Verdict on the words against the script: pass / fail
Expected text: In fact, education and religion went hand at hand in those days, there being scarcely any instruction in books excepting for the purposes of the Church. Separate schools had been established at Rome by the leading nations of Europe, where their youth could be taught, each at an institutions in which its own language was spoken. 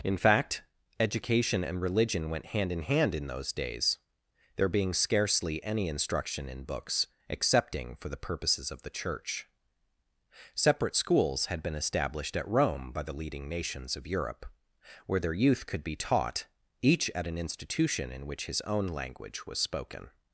fail